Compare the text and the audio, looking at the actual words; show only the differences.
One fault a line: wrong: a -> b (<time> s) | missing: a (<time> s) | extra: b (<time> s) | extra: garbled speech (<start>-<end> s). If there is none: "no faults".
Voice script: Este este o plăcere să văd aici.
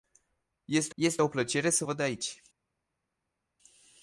no faults